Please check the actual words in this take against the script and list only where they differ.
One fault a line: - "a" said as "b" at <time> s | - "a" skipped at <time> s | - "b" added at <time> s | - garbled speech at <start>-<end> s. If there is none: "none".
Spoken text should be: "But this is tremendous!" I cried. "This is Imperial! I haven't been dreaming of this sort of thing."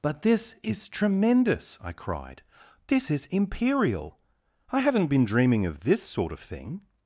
none